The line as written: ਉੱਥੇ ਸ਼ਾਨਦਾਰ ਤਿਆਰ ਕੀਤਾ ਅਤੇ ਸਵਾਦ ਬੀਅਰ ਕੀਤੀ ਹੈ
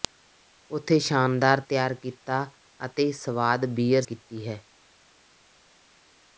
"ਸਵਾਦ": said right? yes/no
yes